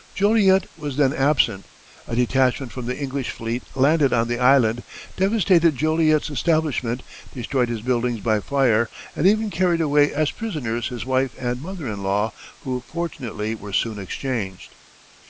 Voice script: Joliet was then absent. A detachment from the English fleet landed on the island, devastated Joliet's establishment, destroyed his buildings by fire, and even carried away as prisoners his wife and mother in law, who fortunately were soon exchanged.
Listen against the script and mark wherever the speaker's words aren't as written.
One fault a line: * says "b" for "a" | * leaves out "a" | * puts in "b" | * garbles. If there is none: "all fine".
all fine